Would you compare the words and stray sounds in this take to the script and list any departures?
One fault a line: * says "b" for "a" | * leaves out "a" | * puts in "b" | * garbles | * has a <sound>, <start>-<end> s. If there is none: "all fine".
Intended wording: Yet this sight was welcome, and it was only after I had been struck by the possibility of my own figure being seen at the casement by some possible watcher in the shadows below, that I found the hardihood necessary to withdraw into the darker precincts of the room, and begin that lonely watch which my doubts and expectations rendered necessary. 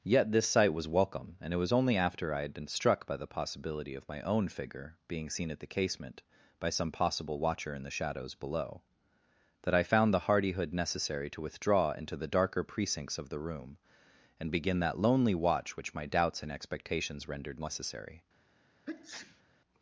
* has a sneeze, 18.8-19.4 s